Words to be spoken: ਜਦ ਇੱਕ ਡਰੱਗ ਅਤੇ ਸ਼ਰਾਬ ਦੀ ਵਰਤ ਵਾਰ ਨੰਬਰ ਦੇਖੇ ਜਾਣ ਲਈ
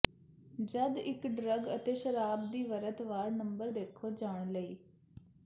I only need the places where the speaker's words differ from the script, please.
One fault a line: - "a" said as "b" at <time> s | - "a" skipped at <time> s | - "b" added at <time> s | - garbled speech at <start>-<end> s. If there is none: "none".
none